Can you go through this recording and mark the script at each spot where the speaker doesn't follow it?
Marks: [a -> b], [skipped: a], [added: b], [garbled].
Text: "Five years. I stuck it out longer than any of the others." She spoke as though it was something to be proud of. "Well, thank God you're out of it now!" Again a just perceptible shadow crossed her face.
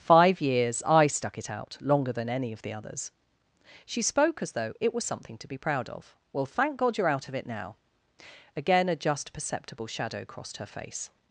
"Five years. I stuck it out longer than any of the others." She spoke as though it was something to be proud of. "Well, thank God you're out of it now!" Again a just perceptible shadow crossed her face.